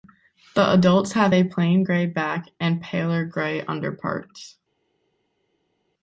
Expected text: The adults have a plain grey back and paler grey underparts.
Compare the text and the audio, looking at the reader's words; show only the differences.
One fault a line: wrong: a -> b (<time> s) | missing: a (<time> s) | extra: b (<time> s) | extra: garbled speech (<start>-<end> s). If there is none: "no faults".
no faults